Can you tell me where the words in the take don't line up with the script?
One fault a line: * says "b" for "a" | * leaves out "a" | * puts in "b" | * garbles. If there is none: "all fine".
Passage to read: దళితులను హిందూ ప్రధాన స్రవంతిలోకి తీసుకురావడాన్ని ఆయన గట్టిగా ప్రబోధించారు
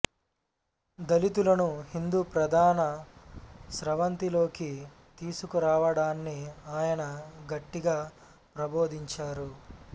all fine